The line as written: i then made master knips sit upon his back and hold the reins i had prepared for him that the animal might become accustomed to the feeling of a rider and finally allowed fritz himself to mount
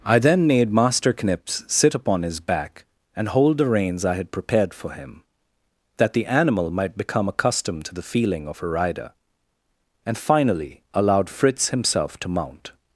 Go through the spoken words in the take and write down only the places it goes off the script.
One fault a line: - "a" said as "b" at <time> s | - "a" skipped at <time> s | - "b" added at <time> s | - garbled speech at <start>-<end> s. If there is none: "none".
none